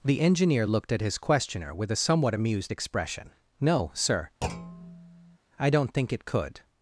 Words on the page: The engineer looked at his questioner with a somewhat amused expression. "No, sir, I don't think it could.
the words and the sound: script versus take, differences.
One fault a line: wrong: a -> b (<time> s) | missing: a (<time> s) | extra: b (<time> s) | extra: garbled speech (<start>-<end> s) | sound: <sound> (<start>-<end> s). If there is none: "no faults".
sound: thud (4.4-5.4 s)